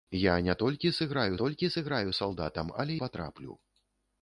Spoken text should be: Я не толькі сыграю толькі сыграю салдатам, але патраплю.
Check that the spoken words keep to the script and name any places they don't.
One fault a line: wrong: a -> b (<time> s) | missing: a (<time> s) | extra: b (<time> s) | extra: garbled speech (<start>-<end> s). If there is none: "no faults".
no faults